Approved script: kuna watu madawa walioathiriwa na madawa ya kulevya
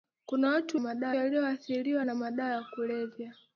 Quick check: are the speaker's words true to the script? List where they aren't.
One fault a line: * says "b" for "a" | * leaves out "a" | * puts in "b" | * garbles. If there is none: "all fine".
all fine